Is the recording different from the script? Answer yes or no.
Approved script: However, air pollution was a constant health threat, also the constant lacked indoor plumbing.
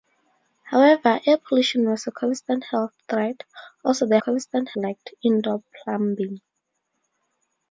no